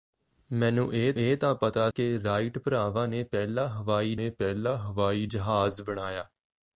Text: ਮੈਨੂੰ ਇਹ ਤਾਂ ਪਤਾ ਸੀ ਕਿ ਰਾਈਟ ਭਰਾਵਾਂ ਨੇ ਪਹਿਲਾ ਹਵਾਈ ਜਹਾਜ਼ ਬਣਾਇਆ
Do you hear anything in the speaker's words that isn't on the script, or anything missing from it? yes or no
yes